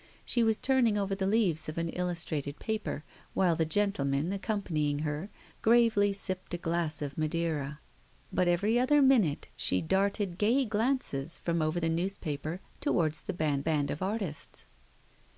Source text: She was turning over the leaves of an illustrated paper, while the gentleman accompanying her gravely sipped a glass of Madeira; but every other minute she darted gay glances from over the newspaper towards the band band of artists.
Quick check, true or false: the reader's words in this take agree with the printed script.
true